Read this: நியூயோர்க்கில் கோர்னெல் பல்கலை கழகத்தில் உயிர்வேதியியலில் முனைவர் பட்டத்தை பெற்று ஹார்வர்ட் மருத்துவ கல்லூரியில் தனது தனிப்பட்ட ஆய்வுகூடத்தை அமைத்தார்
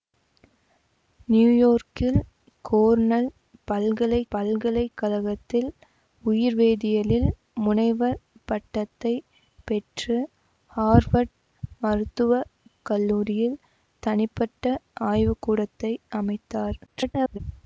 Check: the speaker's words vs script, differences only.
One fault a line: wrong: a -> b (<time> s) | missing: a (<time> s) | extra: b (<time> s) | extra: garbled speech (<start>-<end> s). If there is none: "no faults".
extra: பல்கலை (4.3 s)
missing: தனது (13.6 s)
extra: garbled speech (16.9-17.4 s)